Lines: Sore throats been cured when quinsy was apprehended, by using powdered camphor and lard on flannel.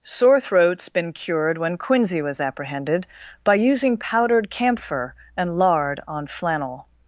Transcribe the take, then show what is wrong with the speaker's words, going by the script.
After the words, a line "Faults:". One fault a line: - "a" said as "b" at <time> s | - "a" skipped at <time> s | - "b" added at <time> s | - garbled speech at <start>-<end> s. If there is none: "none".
Sore throats been cured when quinsy was apprehended, by using powdered camphor and lard on flannel.
Faults:
none